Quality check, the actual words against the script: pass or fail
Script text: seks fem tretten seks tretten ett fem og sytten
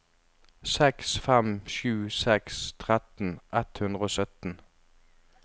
fail